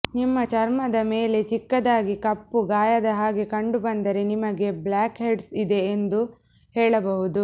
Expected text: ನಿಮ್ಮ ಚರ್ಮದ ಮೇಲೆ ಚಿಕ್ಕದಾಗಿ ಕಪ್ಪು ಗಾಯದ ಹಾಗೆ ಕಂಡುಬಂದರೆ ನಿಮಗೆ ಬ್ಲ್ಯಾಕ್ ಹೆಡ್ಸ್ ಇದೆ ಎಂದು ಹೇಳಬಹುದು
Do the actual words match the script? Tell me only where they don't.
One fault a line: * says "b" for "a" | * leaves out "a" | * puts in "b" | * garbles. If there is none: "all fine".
all fine